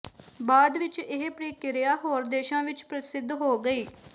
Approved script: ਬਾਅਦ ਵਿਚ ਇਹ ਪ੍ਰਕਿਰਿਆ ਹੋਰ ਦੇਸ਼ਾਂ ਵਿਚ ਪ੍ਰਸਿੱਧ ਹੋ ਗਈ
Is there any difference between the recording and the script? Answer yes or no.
no